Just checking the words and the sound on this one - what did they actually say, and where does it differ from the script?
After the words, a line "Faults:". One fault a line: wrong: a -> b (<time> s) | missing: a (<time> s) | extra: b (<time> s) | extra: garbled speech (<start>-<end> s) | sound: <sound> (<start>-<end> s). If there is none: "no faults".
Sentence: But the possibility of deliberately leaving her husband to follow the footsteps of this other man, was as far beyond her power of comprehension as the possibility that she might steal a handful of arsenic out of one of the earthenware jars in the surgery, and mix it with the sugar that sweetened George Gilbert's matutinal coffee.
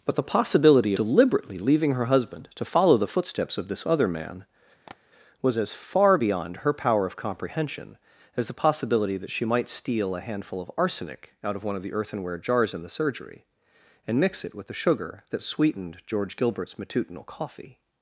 But the possibility deliberately leaving her husband to follow the footsteps of this other man, was as far beyond her power of comprehension as the possibility that she might steal a handful of arsenic out of one of the earthenware jars in the surgery, and mix it with the sugar that sweetened George Gilbert's matutinal coffee.
Faults:
missing: of (0.9 s)
sound: tap (4.9-5.0 s)